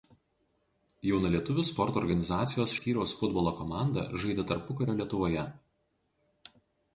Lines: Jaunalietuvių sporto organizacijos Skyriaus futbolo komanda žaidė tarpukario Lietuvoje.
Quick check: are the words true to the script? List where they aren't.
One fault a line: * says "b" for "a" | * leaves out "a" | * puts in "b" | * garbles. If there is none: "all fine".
all fine